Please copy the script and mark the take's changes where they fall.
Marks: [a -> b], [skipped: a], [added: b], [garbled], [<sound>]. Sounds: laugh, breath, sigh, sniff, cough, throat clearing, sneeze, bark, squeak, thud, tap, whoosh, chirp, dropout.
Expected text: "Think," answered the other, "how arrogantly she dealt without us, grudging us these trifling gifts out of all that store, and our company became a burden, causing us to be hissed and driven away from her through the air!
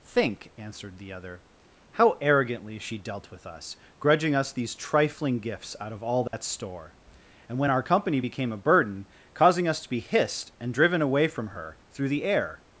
"Think," answered the other, "how arrogantly she dealt [without -> with] us, grudging us these trifling gifts out of all that [dropout] store, and [added: when] our company became a burden, causing us to be hissed and driven away from her through the air!